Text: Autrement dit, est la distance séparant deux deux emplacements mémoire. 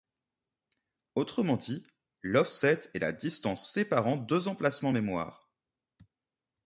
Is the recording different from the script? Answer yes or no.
yes